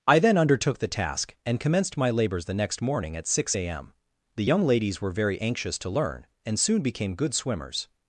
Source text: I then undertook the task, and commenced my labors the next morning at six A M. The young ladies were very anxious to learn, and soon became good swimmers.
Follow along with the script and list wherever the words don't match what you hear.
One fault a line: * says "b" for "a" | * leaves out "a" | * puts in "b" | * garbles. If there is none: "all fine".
all fine